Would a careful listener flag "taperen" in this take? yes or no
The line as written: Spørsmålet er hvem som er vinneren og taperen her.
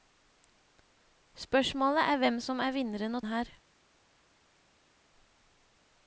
yes